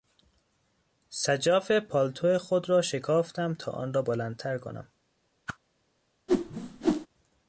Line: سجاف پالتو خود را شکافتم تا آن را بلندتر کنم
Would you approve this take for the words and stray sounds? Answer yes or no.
no